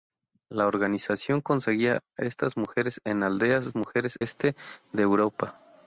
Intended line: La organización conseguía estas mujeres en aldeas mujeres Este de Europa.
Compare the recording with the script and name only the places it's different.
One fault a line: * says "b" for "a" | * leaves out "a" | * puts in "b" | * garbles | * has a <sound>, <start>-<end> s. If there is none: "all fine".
all fine